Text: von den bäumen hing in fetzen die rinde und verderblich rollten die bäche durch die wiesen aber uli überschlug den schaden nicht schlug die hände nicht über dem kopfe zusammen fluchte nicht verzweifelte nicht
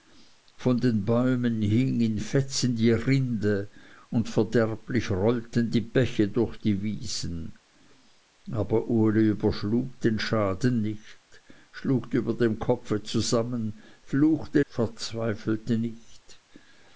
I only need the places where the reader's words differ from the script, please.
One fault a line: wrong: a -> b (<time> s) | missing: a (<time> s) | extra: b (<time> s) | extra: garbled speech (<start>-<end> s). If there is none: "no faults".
missing: die hände nicht (12.1 s)
missing: nicht (14.6 s)